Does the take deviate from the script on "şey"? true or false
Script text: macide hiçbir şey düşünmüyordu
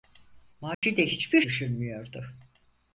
true